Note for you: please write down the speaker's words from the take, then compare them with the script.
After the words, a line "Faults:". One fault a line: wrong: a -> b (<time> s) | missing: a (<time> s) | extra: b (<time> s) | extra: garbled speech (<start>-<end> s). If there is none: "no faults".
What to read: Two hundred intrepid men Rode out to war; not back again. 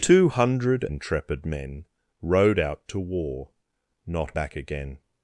Two hundred intrepid men Rode out to war; not back again.
Faults:
no faults